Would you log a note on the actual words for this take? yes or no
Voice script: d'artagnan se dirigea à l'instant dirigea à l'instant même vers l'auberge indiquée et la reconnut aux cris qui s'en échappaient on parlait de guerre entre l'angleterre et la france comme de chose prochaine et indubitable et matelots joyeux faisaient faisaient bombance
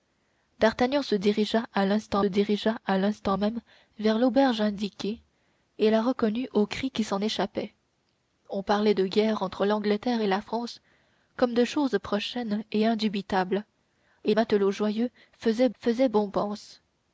no